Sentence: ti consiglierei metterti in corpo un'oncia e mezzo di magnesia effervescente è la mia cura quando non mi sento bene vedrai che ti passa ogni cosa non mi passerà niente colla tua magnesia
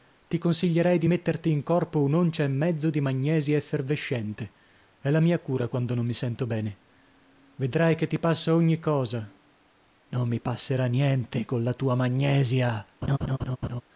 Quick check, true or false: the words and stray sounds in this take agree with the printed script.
false